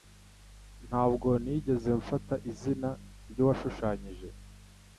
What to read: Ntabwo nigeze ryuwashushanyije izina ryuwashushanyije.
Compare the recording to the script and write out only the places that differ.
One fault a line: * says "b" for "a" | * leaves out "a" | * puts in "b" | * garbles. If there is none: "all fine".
* says "mfata" for "ryuwashushanyije"